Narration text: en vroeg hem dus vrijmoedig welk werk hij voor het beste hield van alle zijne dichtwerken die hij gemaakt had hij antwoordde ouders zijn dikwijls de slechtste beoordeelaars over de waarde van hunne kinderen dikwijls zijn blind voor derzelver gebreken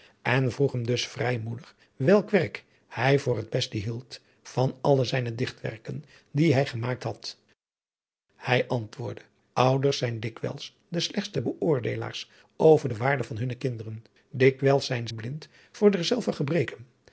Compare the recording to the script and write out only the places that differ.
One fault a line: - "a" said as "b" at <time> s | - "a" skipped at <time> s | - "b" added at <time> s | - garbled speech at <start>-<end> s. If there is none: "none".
none